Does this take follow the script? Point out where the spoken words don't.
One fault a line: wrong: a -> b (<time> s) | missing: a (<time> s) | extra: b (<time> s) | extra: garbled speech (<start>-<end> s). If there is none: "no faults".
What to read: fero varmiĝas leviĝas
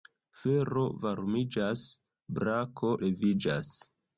extra: brako (2.4 s)